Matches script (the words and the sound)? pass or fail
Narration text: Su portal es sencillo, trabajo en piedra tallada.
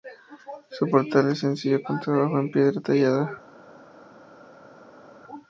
fail